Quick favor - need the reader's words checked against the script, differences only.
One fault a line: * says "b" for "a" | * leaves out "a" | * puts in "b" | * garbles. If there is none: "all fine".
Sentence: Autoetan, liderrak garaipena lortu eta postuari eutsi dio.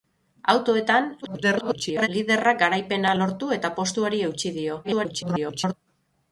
* garbles
* garbles